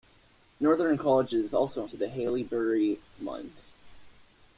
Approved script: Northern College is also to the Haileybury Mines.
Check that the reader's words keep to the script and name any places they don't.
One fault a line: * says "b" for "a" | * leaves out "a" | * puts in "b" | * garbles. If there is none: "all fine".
all fine